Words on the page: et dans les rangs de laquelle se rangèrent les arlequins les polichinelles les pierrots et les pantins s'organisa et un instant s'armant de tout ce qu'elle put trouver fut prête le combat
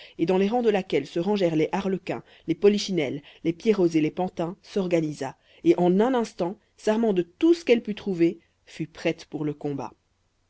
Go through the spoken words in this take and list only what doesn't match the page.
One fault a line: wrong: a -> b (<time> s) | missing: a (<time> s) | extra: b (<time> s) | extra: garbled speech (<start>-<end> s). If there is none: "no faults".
extra: en (5.8 s)
extra: pour (9.2 s)